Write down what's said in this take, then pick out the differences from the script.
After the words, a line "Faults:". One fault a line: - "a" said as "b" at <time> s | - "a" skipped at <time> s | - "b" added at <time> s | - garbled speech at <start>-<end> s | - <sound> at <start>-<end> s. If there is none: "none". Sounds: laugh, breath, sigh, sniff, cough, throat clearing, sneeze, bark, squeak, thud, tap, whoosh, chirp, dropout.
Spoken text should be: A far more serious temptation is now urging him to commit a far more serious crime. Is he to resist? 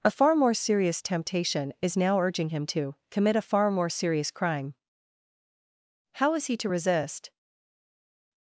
A far more serious temptation is now urging him to commit a far more serious crime. How is he to resist?
Faults:
- "How" added at 6.1 s